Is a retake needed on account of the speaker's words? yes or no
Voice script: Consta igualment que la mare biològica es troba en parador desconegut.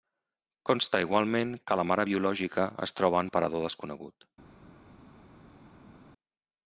no